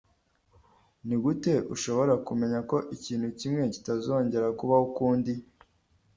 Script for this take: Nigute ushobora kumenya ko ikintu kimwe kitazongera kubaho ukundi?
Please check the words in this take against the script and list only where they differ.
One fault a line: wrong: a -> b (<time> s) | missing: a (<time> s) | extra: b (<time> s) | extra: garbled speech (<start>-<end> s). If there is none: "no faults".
no faults